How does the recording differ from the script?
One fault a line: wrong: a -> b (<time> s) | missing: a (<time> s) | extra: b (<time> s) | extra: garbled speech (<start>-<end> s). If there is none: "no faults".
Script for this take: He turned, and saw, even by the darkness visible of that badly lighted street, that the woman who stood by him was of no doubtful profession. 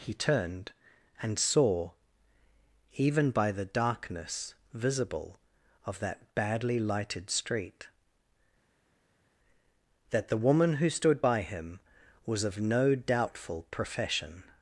no faults